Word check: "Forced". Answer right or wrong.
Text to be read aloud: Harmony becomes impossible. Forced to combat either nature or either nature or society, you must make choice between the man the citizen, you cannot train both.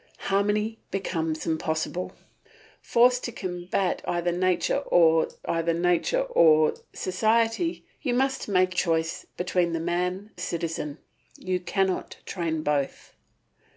right